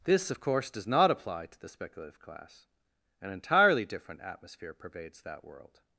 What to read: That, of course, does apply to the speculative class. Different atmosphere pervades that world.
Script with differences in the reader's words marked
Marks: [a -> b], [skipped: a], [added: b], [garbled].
[That, -> This] of course, does [added: not] apply to the speculative class. [added: An entirely] Different atmosphere pervades that world.